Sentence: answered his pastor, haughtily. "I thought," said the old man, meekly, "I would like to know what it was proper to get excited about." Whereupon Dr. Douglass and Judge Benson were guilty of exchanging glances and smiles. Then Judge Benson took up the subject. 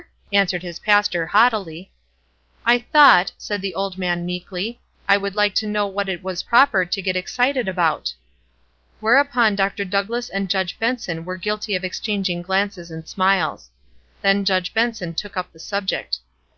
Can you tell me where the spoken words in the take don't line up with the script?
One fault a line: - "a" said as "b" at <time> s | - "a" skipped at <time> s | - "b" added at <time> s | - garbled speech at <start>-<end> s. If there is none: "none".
none